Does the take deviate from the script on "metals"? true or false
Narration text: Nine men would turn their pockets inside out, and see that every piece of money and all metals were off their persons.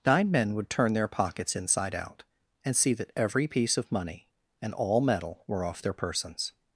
true